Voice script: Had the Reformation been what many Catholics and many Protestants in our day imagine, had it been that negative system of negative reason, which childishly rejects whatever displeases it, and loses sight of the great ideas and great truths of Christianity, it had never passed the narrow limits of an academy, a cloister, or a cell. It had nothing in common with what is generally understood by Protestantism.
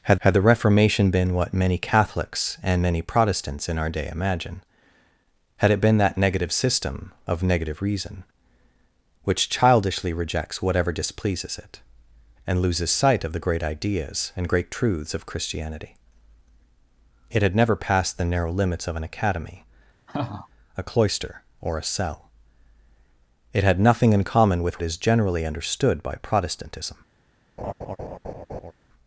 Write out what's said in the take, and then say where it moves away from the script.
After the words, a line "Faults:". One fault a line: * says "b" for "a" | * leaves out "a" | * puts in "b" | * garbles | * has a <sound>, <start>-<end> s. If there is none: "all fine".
Had had the Reformation been what many Catholics and many Protestants in our day imagine, had it been that negative system of negative reason, which childishly rejects whatever displeases it, and loses sight of the great ideas and great truths of Christianity, it had never passed the narrow limits of an academy, a cloister, or a cell. It had nothing in common with is generally understood by Protestantism.
Faults:
* puts in "had"
* has a laugh, 20.1-20.5 s
* leaves out "what"
* has a laugh, 27.6-28.7 s